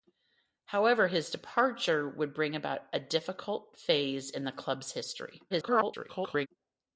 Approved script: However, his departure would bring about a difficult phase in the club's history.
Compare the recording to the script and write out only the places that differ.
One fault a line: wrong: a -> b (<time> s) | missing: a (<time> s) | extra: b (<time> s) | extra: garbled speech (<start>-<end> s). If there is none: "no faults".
extra: garbled speech (5.5-6.5 s)